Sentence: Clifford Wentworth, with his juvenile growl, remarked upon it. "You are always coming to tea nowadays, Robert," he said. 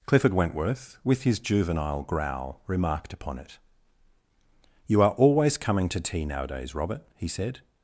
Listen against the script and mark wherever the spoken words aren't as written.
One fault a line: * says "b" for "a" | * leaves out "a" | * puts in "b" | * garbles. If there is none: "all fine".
all fine